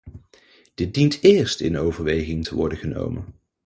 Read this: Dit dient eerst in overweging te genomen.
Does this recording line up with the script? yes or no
no